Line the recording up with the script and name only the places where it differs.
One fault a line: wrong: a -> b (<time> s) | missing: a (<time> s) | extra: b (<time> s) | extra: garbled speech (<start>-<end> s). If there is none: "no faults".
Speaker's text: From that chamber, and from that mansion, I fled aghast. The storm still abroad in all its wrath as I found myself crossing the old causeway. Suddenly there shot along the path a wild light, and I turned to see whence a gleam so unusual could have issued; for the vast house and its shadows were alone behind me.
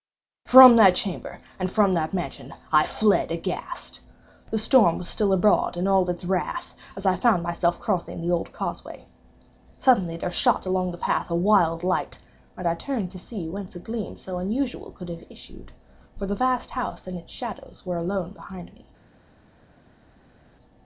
extra: was (5.0 s)